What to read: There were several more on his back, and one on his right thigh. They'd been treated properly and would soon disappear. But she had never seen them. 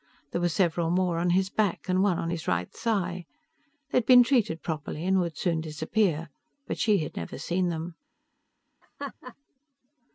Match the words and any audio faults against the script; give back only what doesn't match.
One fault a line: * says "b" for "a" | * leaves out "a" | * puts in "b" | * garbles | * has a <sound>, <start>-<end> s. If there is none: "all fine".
* has a laugh, 8.8-9.4 s